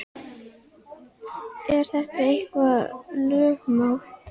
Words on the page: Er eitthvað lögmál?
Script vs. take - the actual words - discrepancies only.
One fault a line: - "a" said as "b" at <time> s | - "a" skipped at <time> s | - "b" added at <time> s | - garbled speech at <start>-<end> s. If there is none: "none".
- "þetta" added at 1.9 s